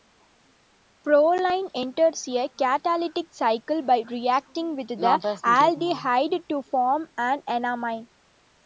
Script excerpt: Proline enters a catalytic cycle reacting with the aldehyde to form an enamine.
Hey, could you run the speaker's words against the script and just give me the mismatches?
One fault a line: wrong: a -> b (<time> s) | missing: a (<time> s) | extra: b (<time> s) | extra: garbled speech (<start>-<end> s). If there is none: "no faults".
extra: by (3.8 s)